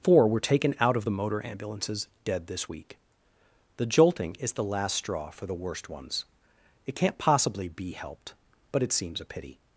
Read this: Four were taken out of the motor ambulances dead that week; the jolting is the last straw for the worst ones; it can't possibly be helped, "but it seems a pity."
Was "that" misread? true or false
true